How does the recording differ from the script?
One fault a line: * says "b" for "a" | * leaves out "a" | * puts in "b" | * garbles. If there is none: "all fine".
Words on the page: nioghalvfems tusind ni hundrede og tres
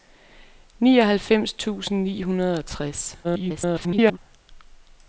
* garbles